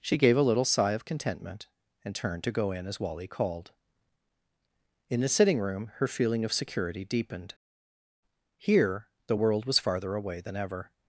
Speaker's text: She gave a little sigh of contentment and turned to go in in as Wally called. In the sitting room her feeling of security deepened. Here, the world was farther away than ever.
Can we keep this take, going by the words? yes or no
no